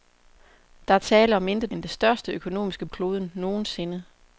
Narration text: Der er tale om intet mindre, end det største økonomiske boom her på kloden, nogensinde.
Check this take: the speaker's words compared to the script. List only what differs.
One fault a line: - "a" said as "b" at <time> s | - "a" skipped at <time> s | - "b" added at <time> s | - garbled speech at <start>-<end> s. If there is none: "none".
- "mindre" skipped at 1.7 s
- "boom her på" skipped at 2.9 s